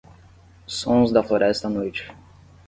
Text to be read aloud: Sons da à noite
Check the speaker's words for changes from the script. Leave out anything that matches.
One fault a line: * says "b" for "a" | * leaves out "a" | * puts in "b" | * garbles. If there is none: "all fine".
* puts in "floresta"